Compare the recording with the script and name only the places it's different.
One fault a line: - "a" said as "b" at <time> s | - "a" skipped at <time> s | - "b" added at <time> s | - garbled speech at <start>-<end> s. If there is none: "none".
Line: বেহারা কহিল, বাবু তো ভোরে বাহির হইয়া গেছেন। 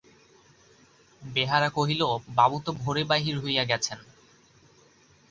none